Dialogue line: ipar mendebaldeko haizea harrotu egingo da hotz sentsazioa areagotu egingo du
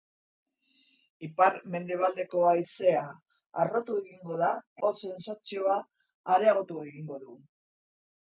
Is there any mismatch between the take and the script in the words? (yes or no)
no